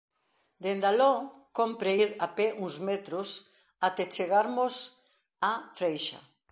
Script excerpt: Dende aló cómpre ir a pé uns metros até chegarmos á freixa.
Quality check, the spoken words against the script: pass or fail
pass